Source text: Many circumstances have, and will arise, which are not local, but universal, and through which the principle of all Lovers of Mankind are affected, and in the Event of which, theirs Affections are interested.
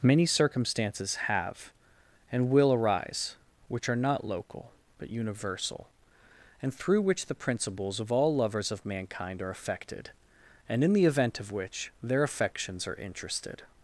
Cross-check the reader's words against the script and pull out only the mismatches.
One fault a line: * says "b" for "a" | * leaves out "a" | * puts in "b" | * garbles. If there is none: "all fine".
* says "principles" for "principle"
* says "their" for "theirs"